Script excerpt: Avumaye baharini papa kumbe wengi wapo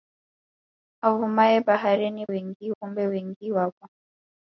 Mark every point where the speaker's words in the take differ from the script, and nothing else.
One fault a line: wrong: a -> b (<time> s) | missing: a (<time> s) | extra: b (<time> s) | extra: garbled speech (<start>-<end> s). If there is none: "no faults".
wrong: papa -> wengi (2.3 s)